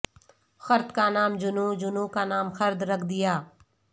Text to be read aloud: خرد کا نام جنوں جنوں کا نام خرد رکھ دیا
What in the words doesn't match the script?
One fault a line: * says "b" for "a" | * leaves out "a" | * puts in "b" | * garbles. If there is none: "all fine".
all fine